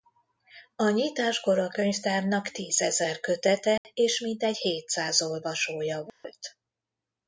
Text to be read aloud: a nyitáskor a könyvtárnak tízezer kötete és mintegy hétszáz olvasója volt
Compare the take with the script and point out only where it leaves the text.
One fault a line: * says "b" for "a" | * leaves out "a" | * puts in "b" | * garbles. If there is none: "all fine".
all fine